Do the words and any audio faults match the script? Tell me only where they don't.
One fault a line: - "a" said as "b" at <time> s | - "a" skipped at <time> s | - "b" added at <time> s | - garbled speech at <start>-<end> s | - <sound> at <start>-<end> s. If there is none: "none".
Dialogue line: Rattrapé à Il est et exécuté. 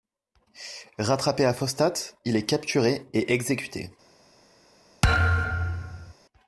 - "Fostat" added at 1.5 s
- "capturé" added at 2.5 s
- thud at 5.0-6.1 s